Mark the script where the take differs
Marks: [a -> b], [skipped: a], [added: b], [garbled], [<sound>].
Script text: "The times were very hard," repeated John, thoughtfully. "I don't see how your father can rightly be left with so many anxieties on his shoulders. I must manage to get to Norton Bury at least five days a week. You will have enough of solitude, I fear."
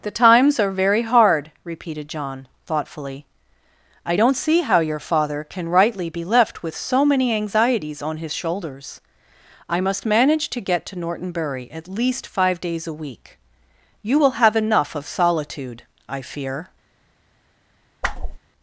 "The times [were -> are] very hard," repeated John, thoughtfully. "I don't see how your father can rightly be left with so many anxieties on his shoulders. I must manage to get to Norton Bury at least five days a week. You will have enough of solitude, I fear." [whoosh]